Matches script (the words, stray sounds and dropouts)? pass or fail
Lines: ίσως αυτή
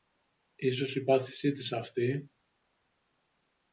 fail